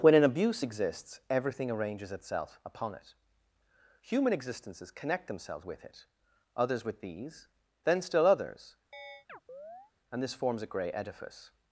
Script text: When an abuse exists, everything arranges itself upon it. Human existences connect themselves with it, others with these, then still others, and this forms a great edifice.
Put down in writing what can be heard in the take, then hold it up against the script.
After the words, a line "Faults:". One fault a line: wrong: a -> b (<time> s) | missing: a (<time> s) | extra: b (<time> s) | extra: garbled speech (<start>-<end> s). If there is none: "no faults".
When an abuse exists, everything arranges itself upon it. Human existences connect themselves with it, others with these, then still others, and this forms a grey edifice.
Faults:
wrong: great -> grey (10.7 s)